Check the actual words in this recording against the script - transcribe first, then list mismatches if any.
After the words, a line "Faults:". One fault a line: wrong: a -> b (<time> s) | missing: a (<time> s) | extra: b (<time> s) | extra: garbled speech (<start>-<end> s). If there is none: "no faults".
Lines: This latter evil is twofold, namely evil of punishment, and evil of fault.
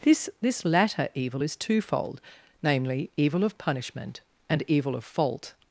This this latter evil is twofold, namely evil of punishment, and evil of fault.
Faults:
extra: this (0.4 s)